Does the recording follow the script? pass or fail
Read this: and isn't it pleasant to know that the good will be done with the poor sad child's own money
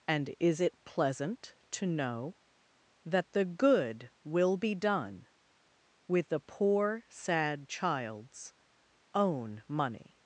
fail